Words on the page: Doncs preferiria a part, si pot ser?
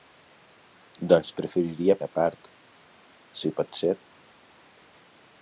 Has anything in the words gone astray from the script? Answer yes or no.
no